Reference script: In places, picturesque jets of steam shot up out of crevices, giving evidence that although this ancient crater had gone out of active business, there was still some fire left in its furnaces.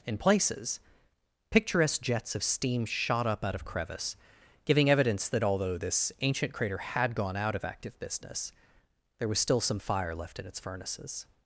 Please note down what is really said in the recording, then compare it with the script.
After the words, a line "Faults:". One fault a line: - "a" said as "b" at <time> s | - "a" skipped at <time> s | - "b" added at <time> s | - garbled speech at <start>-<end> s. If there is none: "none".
In places, picturesque jets of steam shot up out of crevice, giving evidence that although this ancient crater had gone out of active business, there was still some fire left in its furnaces.
Faults:
- "crevices" said as "crevice" at 3.6 s